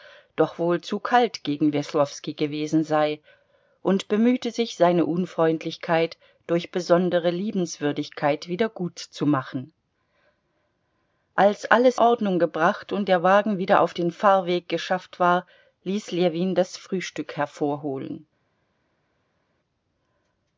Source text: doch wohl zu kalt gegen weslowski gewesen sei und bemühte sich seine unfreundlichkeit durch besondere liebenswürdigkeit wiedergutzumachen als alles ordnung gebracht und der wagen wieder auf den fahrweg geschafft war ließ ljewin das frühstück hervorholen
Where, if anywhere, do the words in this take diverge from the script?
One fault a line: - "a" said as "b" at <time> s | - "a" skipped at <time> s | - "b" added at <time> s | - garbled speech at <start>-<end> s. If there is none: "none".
none